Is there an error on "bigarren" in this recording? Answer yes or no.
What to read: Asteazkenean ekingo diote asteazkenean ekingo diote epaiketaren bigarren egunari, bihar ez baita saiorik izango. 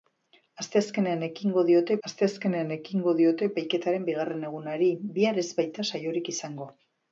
no